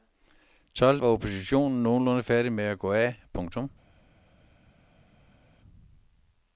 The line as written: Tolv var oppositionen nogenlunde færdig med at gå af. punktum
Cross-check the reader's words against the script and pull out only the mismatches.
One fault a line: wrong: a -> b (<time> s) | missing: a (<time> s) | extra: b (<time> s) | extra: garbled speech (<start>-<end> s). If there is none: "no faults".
no faults